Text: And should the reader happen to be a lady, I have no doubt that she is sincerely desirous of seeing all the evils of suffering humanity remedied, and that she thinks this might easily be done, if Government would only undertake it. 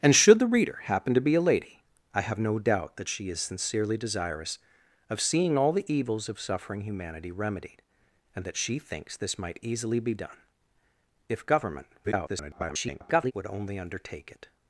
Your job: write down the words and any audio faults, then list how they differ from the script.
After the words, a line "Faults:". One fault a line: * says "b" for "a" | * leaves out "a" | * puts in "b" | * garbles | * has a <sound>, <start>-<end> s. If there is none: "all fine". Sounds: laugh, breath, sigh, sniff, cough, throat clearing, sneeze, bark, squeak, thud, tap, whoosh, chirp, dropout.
And should the reader happen to be a lady, I have no doubt that she is sincerely desirous of seeing all the evils of suffering humanity remedied, and that she thinks this might easily be done, if Government [garbled] would only undertake it.
Faults:
* garbles